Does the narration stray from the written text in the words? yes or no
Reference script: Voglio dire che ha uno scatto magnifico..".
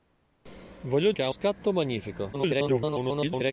yes